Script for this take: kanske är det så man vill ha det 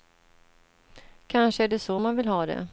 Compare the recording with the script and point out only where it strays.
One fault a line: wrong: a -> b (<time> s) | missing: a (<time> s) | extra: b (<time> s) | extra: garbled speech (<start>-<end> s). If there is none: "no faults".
no faults